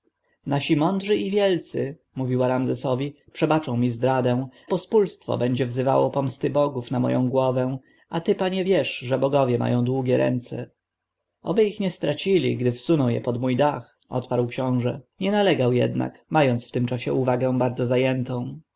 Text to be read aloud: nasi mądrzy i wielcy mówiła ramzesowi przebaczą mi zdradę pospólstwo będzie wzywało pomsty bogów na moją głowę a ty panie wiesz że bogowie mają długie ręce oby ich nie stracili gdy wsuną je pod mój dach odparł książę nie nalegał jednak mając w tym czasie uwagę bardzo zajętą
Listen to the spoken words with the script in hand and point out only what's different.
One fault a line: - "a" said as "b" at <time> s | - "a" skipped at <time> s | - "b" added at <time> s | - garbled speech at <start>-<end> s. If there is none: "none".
none